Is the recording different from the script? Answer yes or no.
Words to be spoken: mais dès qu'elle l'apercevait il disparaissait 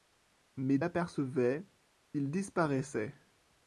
yes